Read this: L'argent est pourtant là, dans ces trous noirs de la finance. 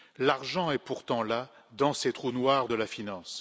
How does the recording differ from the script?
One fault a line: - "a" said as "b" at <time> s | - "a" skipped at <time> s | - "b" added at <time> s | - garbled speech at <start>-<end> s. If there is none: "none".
none